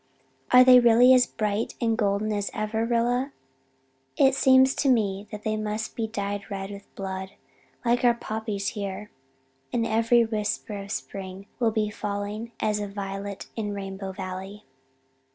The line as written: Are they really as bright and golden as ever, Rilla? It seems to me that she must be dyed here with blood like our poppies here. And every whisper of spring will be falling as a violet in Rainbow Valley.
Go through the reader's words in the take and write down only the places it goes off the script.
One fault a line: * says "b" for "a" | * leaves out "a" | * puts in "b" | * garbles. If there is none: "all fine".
* says "they" for "she"
* says "red" for "here"